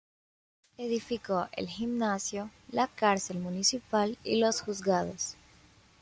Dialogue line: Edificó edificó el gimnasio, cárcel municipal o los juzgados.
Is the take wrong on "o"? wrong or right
wrong